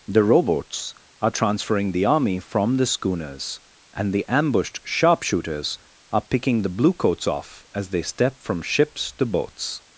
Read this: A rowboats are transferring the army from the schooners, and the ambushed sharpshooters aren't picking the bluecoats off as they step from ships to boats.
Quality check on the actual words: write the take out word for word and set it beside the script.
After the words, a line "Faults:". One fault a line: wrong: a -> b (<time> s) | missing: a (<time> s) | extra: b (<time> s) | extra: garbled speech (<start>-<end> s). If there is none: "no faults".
The rowboats are transferring the army from the schooners, and the ambushed sharpshooters are picking the bluecoats off as they step from ships to boats.
Faults:
wrong: A -> The (0.1 s)
wrong: aren't -> are (6.1 s)